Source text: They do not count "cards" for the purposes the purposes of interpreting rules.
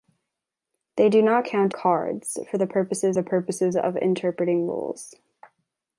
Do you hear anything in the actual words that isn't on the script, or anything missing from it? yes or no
no